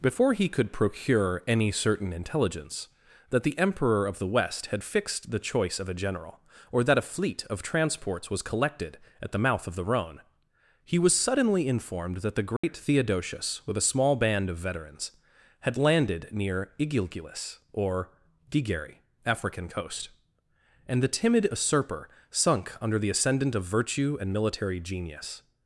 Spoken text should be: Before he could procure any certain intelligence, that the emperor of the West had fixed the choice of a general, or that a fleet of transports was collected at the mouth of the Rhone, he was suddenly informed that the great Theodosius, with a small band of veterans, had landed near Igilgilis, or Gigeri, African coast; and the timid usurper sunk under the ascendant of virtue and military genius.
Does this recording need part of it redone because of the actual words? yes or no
no